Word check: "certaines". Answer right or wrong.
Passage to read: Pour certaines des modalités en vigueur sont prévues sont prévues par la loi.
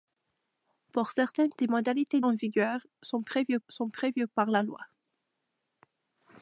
right